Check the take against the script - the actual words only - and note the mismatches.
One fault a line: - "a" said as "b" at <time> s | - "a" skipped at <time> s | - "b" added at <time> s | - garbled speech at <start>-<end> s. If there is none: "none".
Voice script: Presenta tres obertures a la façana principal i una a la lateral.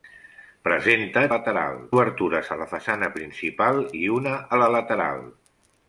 - "tres" said as "lateral" at 1.4 s